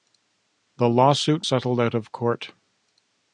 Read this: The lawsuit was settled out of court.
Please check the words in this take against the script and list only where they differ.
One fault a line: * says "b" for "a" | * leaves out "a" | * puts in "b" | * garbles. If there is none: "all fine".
* leaves out "was"